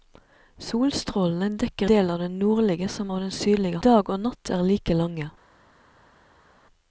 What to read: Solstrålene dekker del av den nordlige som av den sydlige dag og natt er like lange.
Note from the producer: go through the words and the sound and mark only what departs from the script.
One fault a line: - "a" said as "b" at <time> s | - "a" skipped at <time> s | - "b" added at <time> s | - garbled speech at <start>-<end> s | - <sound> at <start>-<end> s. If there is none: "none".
none